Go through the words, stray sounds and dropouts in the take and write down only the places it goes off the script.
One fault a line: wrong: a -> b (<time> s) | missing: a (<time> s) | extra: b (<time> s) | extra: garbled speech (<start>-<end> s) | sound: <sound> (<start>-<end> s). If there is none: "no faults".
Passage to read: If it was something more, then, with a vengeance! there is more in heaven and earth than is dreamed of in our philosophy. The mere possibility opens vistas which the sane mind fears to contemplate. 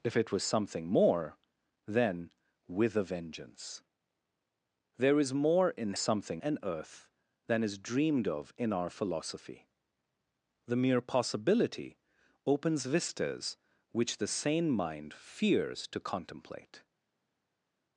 wrong: heaven -> something (6.0 s)